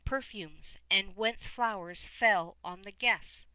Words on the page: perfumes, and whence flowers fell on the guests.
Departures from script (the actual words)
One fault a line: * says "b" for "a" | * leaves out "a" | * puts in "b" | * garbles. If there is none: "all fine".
all fine